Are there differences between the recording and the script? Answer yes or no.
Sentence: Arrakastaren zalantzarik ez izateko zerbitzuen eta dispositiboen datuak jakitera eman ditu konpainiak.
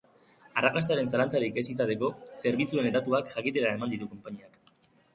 yes